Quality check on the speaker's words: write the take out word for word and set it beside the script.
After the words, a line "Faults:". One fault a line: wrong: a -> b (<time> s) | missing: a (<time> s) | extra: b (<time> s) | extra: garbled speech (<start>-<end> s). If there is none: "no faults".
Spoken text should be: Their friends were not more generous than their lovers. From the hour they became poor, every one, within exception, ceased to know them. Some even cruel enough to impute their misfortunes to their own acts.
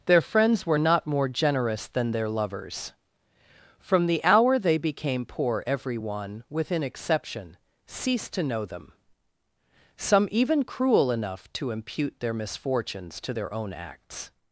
Their friends were not more generous than their lovers. From the hour they became poor, every one, within exception, ceased to know them. Some even cruel enough to impute their misfortunes to their own acts.
Faults:
no faults